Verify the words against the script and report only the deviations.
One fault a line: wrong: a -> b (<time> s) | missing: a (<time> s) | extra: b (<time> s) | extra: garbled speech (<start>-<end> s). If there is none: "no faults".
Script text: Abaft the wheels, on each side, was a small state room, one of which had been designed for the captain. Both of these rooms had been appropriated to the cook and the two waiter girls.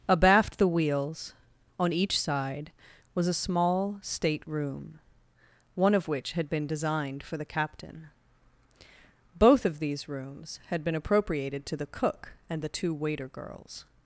no faults